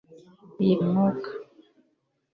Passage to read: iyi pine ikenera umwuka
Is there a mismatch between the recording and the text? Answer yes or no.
yes